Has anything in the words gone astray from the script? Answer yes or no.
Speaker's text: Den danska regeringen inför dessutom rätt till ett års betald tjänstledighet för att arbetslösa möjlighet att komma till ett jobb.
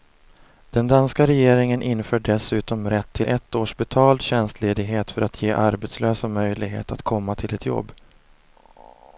yes